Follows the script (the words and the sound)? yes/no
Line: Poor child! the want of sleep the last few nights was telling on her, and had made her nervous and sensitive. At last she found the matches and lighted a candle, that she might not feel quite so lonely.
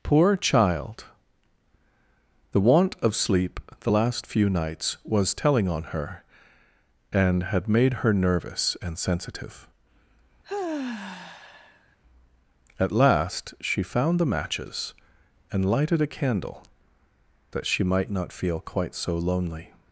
no